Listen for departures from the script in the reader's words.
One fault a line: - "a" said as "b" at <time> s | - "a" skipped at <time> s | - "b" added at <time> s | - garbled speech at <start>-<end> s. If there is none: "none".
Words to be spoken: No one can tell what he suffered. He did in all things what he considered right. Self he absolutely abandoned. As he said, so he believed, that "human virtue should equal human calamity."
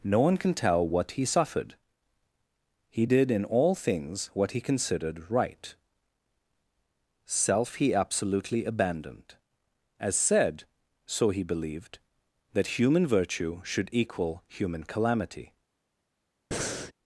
- "he" skipped at 10.1 s